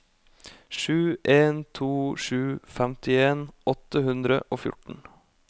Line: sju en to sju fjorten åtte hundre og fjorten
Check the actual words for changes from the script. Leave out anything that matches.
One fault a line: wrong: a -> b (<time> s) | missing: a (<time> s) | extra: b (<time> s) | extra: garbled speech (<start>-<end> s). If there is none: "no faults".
wrong: fjorten -> femtien (2.8 s)